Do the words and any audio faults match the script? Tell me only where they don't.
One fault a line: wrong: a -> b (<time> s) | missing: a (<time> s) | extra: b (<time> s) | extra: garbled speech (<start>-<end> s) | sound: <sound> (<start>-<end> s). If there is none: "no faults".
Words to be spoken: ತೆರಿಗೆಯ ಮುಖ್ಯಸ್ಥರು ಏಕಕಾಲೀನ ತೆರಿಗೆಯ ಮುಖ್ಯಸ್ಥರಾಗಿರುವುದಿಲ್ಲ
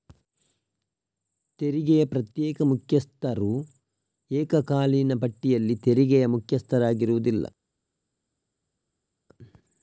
extra: ಪ್ರತ್ಯೇಕ (2.0 s)
extra: ಪಟ್ಟಿಯಲ್ಲಿ (5.2 s)